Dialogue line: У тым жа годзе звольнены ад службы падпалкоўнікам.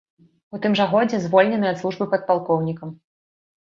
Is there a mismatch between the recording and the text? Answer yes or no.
no